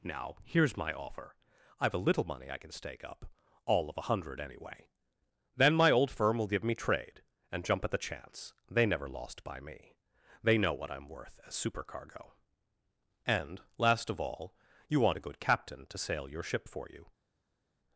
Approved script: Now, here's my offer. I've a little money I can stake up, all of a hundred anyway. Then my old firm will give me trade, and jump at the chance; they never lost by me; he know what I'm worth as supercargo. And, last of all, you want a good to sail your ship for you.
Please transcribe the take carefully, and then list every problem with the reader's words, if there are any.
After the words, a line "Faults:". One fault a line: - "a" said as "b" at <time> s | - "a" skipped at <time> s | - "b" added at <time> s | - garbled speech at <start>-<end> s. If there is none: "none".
Now, here's my offer. I've a little money I can stake up, all of a hundred anyway. Then my old firm will give me trade, and jump at the chance; they never lost by me; they know what I'm worth as supercargo. And, last of all, you want a good captain to sail your ship for you.
Faults:
- "he" said as "they" at 10.4 s
- "captain" added at 15.4 s